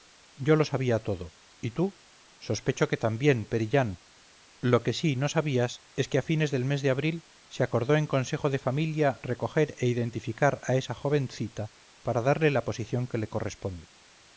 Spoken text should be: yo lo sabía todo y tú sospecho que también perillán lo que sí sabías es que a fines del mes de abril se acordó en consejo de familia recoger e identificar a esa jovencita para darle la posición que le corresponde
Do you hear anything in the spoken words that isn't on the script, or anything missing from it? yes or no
yes